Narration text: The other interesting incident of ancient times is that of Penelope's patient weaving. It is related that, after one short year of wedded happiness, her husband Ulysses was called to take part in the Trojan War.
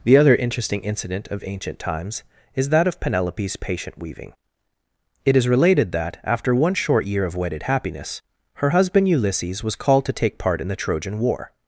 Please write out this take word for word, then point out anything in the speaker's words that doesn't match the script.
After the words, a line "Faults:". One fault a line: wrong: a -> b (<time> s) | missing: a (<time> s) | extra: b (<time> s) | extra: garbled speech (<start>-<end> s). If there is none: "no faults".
The other interesting incident of ancient times is that of Penelope's patient weaving. It is related that, after one short year of wedded happiness, her husband Ulysses was called to take part in the Trojan War.
Faults:
no faults